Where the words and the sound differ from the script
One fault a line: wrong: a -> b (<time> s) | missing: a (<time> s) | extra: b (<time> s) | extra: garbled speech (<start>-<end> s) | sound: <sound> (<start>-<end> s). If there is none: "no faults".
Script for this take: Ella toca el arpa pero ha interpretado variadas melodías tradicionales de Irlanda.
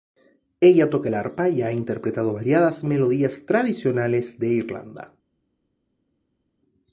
wrong: pero -> y (1.5 s)